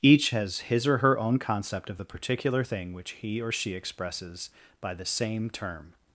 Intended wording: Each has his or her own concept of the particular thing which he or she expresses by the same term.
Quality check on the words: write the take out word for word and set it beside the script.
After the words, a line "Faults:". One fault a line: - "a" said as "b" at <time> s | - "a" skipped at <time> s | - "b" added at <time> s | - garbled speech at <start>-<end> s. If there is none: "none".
Each has his or her own concept of the particular thing which he or she expresses by the same term.
Faults:
none